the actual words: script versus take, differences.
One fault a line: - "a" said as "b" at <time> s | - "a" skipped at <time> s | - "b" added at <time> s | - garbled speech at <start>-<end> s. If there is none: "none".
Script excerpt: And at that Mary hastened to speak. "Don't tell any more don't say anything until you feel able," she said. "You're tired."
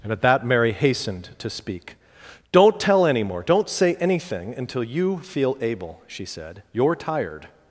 none